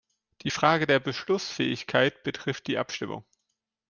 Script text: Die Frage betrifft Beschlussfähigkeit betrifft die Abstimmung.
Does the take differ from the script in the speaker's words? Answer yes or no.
yes